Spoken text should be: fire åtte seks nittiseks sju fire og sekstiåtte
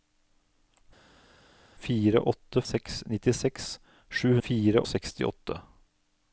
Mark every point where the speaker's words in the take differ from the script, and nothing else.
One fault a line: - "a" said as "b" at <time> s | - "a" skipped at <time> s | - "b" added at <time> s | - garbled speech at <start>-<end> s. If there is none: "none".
none